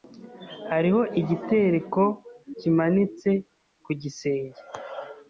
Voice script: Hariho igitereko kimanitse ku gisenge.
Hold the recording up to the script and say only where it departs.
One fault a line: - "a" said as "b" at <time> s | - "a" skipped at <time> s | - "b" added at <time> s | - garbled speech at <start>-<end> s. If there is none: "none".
none